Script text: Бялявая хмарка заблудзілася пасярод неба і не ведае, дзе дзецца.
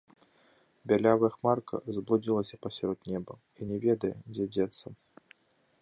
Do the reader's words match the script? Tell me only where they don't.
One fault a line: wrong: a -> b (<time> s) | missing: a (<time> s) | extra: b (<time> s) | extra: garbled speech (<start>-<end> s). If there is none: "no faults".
no faults